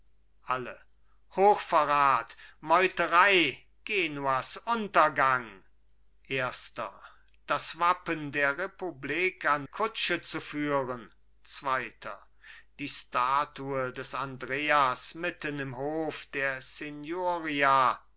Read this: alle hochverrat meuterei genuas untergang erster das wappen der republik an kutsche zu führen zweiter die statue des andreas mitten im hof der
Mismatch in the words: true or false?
false